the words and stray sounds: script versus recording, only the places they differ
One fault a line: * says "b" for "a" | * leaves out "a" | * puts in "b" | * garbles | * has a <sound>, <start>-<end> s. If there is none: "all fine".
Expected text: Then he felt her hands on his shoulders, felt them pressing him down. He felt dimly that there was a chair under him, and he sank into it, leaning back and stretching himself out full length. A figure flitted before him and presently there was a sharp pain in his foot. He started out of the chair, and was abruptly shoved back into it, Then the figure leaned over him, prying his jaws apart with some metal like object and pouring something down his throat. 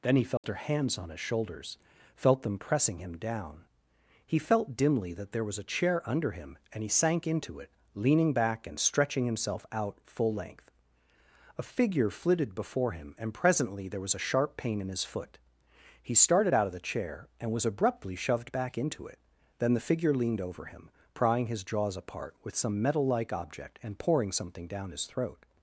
* has a dropout, 0.4-0.4 s